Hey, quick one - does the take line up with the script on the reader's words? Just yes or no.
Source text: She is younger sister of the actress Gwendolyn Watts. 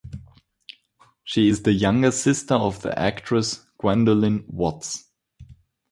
no